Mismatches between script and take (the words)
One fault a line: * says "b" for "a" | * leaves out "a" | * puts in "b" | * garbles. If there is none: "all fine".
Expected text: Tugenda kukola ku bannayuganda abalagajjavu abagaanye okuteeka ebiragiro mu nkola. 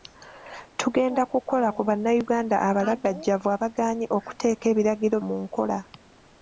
all fine